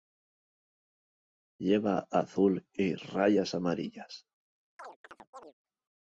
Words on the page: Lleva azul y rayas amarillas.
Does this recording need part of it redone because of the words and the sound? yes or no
yes